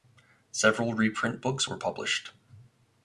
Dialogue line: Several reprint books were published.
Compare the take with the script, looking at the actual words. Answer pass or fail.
pass